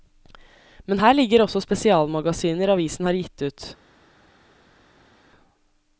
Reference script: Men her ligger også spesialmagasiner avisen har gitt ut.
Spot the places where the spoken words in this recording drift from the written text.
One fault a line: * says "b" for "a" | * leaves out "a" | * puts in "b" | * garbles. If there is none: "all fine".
all fine